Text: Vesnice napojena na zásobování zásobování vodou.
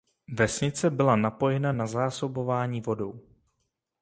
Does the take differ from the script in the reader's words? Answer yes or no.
yes